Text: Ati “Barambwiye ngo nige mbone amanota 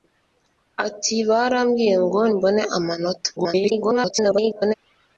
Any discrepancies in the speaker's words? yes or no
yes